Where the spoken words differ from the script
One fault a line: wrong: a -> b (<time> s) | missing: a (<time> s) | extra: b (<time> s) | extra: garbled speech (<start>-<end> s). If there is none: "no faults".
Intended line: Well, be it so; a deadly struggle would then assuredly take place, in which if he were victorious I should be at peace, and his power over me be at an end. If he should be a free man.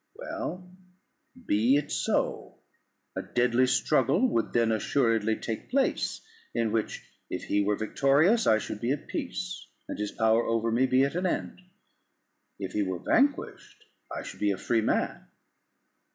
extra: were vanquished I (12.8 s)